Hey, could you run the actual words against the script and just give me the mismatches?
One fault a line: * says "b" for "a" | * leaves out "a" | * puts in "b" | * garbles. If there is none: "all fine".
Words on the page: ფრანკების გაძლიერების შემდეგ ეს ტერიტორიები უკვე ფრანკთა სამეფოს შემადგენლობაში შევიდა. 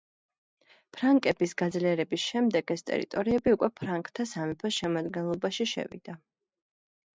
all fine